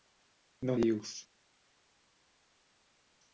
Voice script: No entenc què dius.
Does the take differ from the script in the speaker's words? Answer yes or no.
yes